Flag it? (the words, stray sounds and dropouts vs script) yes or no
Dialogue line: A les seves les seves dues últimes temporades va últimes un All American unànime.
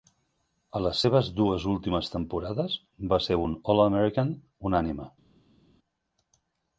yes